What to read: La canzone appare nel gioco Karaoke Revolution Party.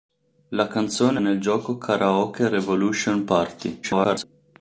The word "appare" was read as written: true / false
false